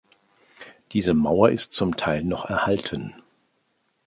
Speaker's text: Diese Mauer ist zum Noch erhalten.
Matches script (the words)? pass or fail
fail